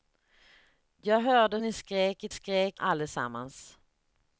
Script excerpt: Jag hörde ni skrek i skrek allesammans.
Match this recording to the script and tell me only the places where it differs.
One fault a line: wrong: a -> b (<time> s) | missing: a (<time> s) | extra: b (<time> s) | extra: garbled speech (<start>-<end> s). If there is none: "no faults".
no faults